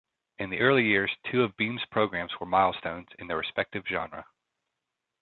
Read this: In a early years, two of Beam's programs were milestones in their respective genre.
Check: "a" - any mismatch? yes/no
yes